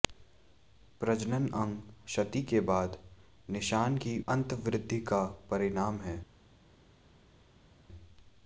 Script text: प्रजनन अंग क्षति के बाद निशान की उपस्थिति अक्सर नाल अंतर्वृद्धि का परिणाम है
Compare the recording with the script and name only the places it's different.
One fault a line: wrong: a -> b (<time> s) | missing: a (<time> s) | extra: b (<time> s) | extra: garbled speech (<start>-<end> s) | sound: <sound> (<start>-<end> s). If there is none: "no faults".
missing: उपस्थिति अक्सर नाल (4.2 s)